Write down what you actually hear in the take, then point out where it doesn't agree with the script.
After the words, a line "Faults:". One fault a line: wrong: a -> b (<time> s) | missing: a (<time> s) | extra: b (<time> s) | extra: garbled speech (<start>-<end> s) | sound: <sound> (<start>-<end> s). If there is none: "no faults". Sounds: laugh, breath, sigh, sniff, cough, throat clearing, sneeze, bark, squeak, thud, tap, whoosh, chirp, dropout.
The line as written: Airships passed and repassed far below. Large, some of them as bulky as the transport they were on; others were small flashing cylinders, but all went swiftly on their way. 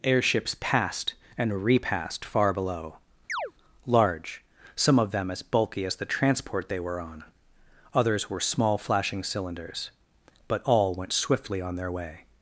Airships passed and repassed far below. Large, some of them as bulky as the transport they were on; others were small flashing cylinders, but all went swiftly on their way.
Faults:
sound: chirp (3.3-3.5 s)